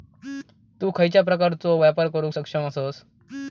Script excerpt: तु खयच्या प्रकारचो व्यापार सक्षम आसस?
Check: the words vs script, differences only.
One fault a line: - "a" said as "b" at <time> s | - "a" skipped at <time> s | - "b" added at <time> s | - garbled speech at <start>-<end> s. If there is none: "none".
- "करुक" added at 2.1 s